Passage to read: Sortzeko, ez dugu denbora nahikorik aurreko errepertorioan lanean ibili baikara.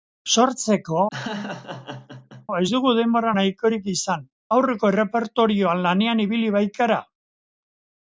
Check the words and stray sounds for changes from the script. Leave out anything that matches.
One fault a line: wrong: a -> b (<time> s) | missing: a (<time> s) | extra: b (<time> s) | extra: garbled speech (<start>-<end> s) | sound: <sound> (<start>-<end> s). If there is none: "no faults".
sound: laugh (1.1-2.5 s)
extra: izan (3.9 s)